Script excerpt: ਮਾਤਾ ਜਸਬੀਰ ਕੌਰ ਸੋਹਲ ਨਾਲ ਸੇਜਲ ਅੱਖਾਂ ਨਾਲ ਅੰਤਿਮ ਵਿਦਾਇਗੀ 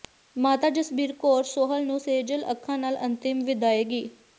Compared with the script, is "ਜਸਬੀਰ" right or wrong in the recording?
right